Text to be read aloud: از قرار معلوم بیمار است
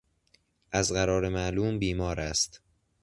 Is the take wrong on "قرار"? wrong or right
right